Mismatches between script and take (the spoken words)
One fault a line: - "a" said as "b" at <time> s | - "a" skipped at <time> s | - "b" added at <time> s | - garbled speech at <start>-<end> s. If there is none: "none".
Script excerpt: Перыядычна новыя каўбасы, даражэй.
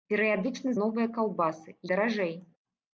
none